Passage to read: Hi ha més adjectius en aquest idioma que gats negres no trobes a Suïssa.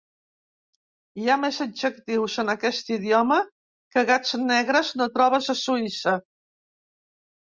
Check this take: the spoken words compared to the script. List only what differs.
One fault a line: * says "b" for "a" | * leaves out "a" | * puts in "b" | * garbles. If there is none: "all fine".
all fine